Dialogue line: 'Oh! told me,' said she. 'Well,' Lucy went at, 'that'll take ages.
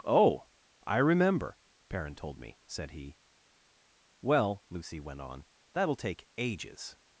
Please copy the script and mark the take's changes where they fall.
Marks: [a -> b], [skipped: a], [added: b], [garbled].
'Oh! [added: I remember Perrin] told me,' said [she. -> he] 'Well,' Lucy went [at, -> on] 'that'll take ages.